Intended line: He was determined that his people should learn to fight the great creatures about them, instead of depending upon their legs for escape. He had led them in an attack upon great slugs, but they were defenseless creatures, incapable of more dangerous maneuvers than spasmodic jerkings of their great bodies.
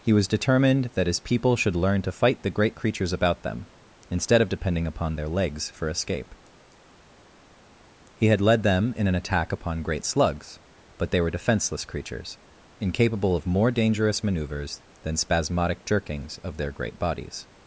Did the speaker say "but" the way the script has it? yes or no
yes